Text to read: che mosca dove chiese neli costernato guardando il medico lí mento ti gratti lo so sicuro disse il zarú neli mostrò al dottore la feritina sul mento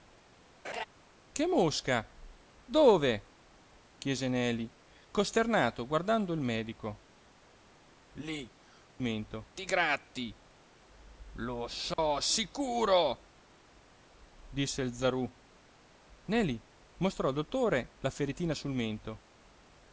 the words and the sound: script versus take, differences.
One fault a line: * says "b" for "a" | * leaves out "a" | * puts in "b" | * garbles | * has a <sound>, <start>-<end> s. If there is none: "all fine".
* has a laugh, 0.6-0.8 s
* has a dropout, 11.9-12.0 s